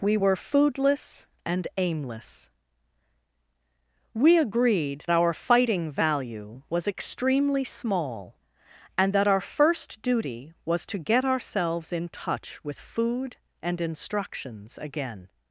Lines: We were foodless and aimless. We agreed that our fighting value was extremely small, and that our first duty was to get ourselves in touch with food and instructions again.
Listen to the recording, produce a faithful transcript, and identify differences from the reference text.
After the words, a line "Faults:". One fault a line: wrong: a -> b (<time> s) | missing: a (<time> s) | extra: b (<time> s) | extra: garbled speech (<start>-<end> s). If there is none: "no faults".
We were foodless and aimless. We agreed our fighting value was extremely small, and that our first duty was to get ourselves in touch with food and instructions again.
Faults:
missing: that (5.0 s)